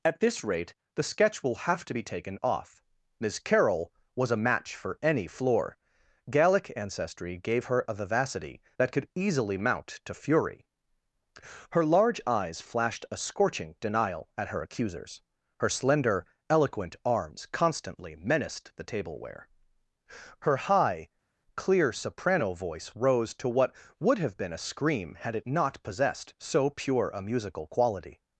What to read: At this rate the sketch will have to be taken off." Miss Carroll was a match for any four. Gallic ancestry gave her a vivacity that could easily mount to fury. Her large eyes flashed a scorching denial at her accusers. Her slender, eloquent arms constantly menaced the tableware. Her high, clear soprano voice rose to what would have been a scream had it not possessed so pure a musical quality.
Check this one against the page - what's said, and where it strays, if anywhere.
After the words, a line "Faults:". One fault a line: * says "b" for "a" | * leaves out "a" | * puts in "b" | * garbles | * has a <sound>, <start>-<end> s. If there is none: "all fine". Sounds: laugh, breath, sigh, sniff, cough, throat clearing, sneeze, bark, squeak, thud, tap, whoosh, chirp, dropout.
At this rate the sketch will have to be taken off." Miss Carroll was a match for any floor. Gallic ancestry gave her a vivacity that could easily mount to fury. Her large eyes flashed a scorching denial at her accusers. Her slender, eloquent arms constantly menaced the tableware. Her high, clear soprano voice rose to what would have been a scream had it not possessed so pure a musical quality.
Faults:
* says "floor" for "four"